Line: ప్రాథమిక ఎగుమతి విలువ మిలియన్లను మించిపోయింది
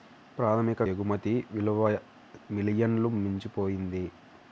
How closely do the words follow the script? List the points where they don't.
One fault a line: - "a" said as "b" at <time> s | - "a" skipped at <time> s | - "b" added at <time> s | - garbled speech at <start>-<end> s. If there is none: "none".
none